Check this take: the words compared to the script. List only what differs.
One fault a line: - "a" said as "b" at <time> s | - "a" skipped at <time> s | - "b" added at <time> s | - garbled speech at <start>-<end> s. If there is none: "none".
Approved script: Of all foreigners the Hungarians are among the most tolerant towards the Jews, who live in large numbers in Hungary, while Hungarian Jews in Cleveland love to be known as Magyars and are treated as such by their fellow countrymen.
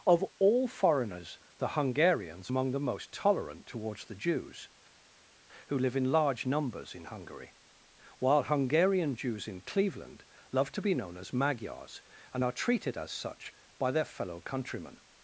- "are" skipped at 2.5 s